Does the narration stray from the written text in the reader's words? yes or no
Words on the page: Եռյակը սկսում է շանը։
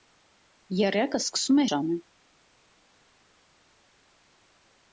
no